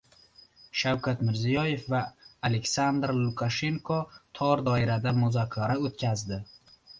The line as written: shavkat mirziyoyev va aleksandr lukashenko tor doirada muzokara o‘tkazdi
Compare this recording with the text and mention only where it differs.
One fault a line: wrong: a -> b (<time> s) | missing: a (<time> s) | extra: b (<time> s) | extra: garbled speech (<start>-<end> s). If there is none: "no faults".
no faults